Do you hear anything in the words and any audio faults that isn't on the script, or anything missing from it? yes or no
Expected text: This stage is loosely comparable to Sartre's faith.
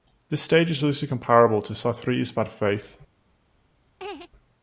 yes